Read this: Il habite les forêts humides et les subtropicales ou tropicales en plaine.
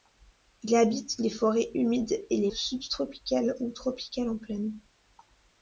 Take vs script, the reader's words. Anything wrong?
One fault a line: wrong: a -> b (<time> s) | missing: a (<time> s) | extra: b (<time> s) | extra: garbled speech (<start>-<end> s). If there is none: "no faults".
no faults